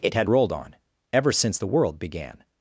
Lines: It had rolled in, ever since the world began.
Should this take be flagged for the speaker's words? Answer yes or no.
yes